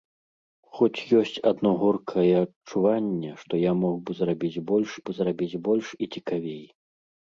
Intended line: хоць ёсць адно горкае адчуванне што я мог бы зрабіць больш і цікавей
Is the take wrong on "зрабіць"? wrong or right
right